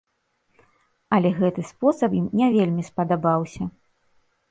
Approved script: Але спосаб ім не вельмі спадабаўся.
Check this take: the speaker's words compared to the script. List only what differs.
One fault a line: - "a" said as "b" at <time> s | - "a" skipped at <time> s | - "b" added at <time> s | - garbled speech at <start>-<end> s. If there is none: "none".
- "гэты" added at 1.4 s